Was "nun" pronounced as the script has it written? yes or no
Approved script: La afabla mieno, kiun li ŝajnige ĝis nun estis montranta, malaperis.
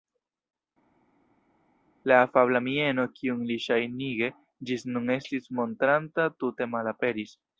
yes